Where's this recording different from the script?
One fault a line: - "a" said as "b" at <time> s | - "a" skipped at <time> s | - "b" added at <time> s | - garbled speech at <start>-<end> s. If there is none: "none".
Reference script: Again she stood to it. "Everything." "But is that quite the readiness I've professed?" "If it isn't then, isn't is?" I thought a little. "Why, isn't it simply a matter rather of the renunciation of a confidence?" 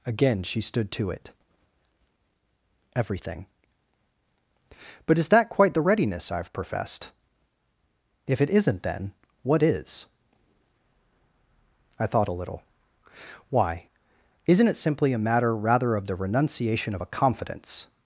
- "isn't" said as "what" at 9.4 s